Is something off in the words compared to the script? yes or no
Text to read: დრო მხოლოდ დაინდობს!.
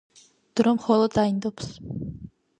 no